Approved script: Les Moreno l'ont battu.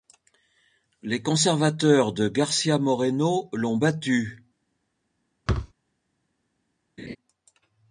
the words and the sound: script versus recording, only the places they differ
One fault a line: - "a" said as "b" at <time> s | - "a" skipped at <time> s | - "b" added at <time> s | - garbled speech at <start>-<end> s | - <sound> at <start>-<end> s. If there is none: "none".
- "conservateurs de García" added at 1.2 s
- thud at 5.5-5.7 s
- laugh at 7.0-7.2 s